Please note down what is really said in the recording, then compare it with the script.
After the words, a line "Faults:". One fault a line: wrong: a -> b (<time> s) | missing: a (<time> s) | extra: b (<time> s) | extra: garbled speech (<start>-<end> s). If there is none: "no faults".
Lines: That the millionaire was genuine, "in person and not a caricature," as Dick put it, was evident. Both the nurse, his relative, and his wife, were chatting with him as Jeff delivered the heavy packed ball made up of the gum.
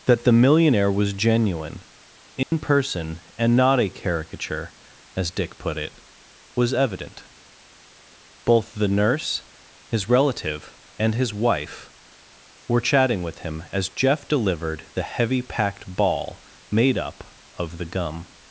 That the millionaire was genuine, "in person and not a caricature," as Dick put it, was evident. Both the nurse, his relative, and his wife, were chatting with him as Jeff delivered the heavy packed ball made up of the gum.
Faults:
no faults